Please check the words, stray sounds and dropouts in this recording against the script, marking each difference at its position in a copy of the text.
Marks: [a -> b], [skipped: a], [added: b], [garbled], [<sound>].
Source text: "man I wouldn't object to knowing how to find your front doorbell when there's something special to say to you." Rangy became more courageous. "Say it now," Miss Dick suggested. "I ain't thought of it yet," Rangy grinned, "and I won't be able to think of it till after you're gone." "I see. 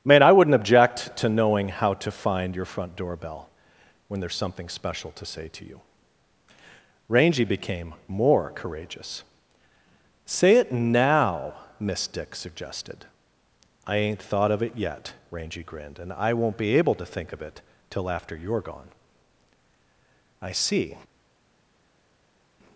"man I wouldn't object to knowing how to find your front doorbell when there's something special to say to you." Rangy became more courageous. "Say it now," Miss Dick suggested. "I ain't thought of it yet," Rangy grinned, "and I won't be able to think of it till after you're gone." "I see.